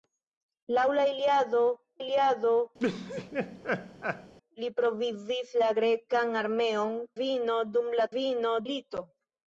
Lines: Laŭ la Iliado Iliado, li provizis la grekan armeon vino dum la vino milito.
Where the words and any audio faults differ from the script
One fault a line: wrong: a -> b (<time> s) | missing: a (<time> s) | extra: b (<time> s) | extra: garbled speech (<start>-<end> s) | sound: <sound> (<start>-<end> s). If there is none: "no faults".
sound: laugh (2.8-4.3 s)